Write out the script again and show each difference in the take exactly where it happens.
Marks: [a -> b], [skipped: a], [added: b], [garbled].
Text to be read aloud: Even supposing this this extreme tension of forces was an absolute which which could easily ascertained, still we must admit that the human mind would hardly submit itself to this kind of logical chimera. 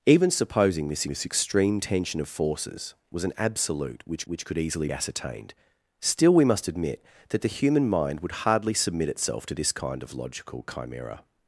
Even supposing this this extreme tension of forces was an absolute which which could easily ascertained, still we must admit that the human mind would hardly submit itself to this kind of logical chimera.